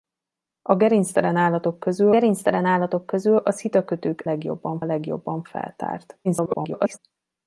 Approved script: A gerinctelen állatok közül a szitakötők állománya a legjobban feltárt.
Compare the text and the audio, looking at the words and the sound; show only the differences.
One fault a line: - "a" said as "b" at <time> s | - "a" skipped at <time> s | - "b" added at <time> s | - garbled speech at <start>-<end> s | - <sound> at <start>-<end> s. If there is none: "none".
- "gerinctelen állatok közül" added at 2.1 s
- "állománya" said as "legjobban" at 4.2 s
- garbled speech at 6.2-7.0 s